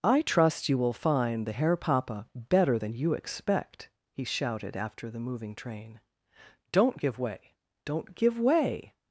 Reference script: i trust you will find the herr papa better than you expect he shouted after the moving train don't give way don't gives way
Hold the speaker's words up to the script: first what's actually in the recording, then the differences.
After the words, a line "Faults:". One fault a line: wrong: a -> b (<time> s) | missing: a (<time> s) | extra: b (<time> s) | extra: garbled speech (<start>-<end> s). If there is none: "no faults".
i trust you will find the herr papa better than you expect he shouted after the moving train don't give way don't give way
Faults:
wrong: gives -> give (8.1 s)